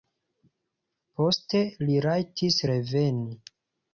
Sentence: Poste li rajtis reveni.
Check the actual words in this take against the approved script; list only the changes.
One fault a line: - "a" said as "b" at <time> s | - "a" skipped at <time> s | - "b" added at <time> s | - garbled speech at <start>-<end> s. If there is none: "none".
none